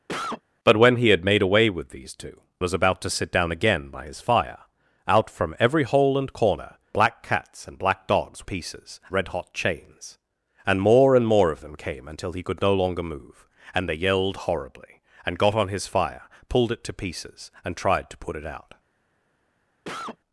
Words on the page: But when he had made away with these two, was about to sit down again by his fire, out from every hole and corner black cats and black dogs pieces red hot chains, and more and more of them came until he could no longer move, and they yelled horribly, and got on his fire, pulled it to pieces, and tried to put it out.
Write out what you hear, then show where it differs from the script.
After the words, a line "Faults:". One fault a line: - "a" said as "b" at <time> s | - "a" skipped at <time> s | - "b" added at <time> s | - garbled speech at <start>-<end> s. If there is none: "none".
But when he had made away with these two, was about to sit down again by his fire, out from every hole and corner black cats and black dogs pieces red hot chains, and more and more of them came until he could no longer move, and they yelled horribly, and got on his fire, pulled it to pieces, and tried to put it out.
Faults:
none